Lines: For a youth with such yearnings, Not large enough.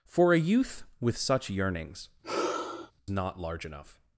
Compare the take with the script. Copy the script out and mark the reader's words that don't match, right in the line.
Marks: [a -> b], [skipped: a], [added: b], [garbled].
For a youth with such yearnings, Not large enough.